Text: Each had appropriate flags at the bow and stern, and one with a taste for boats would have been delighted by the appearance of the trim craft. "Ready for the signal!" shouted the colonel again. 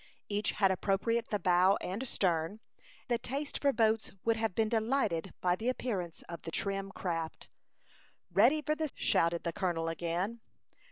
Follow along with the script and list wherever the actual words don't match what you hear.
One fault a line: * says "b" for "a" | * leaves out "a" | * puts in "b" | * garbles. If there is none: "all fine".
* leaves out "flags"
* leaves out "and one with"
* leaves out "signal"